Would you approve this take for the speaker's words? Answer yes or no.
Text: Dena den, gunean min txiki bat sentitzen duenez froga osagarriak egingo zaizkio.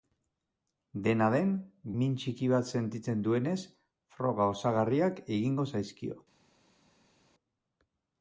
no